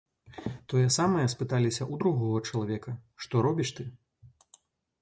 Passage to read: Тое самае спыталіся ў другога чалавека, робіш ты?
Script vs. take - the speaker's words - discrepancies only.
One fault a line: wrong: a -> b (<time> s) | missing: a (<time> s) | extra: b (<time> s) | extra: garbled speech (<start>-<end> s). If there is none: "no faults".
extra: што (3.3 s)